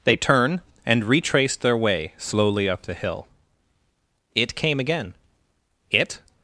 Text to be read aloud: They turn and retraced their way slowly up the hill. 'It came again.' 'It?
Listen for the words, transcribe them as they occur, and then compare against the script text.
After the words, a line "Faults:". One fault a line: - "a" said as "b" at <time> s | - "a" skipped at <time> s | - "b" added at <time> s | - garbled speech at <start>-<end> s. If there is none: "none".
They turn and retraced their way slowly up the hill. 'It came again.' 'It?
Faults:
none